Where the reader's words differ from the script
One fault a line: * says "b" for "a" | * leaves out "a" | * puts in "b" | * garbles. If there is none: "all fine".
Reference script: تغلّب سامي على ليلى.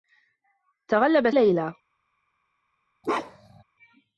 * leaves out "سامي على"